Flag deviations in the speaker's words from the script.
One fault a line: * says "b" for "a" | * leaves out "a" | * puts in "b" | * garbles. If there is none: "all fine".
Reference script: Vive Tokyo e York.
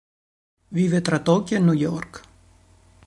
* puts in "tra"
* puts in "New"